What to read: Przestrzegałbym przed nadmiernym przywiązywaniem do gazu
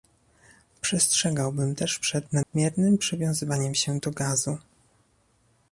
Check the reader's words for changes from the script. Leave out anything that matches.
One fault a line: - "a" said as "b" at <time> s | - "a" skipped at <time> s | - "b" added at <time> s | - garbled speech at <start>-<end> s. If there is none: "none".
- "też" added at 1.8 s
- "się" added at 3.7 s